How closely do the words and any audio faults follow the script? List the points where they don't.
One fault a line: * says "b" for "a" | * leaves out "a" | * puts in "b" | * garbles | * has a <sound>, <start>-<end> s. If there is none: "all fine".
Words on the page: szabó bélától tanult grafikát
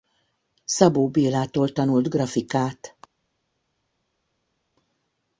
all fine